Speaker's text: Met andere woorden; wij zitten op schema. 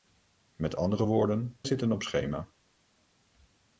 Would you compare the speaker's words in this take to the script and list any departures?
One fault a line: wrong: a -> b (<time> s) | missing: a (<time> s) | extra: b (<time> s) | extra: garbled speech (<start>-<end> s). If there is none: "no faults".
missing: wij (1.6 s)